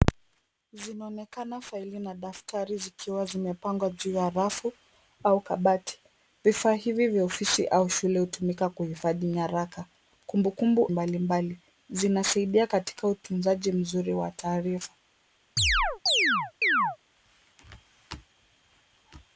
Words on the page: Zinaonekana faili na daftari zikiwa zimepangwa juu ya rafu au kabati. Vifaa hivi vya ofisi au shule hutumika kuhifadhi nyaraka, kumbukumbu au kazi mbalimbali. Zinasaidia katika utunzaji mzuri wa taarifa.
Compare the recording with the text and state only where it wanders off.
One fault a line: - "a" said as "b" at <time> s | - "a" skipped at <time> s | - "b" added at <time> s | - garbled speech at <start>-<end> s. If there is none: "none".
- "au kazi" skipped at 10.9 s